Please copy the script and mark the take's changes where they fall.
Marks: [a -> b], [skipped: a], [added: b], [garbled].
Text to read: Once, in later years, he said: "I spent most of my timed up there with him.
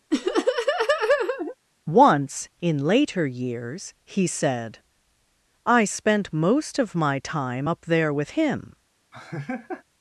Once, in later years, he said: "I spent most of my [timed -> time] up there with him.